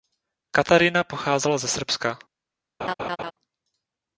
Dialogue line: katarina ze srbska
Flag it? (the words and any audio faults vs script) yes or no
yes